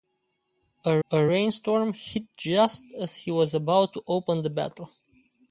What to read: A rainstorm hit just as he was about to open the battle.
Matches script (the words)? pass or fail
fail